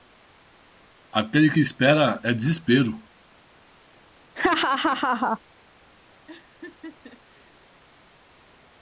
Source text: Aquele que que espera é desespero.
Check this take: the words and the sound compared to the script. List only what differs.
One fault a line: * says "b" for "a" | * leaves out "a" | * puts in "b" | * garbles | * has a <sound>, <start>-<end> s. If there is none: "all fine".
* leaves out "que"
* has a laugh, 4.4-5.4 s
* has a laugh, 6.3-7.6 s